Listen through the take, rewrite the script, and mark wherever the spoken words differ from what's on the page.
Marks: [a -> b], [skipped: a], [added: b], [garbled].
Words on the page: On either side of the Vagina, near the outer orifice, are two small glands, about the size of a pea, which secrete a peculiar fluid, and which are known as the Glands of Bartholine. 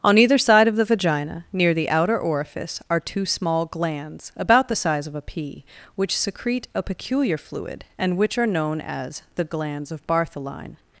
On either side of the Vagina, near the outer orifice, are two small glands, about the size of a pea, which secrete a peculiar fluid, and which are known as the Glands of Bartholine.